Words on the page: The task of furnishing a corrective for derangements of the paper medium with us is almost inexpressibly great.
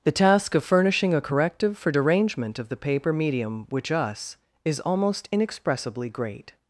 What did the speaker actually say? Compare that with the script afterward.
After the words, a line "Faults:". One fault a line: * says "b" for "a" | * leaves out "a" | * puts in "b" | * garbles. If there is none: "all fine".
The task of furnishing a corrective for derangement of the paper medium which us is almost inexpressibly great.
Faults:
* says "derangement" for "derangements"
* says "which" for "with"